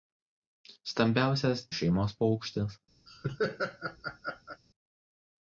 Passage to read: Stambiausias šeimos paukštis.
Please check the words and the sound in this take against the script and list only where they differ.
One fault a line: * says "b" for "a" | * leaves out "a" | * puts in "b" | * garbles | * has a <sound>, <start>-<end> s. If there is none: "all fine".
* has a laugh, 3.1-4.6 s